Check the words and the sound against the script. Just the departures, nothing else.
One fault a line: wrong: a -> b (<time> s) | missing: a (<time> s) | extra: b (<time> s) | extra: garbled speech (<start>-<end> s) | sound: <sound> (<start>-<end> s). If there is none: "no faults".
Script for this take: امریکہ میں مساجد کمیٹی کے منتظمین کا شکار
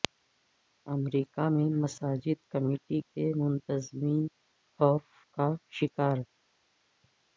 extra: خوف (4.8 s)